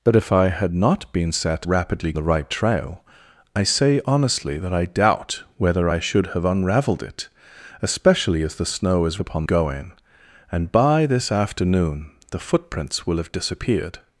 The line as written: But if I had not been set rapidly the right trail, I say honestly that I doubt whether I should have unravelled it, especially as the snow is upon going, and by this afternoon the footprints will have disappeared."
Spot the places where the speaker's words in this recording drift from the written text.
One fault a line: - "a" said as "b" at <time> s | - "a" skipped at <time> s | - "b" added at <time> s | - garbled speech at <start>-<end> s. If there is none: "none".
none